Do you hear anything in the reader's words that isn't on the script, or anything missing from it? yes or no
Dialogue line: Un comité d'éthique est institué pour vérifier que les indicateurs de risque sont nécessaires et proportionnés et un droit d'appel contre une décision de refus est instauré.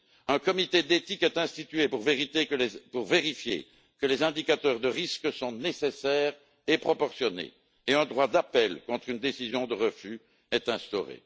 no